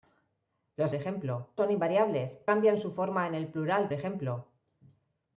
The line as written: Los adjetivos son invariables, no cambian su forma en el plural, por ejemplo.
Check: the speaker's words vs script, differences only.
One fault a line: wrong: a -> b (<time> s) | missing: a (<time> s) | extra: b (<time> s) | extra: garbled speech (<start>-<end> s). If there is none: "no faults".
wrong: adjetivos -> ejemplo (0.9 s)
missing: no (2.5 s)
missing: por (3.9 s)